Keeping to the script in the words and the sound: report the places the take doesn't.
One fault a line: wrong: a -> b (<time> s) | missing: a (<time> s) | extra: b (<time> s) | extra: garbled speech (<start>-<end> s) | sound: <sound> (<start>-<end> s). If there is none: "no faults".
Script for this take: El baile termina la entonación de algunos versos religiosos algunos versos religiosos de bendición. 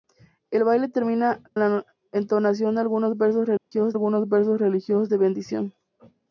sound: dropout (3.6-3.7 s)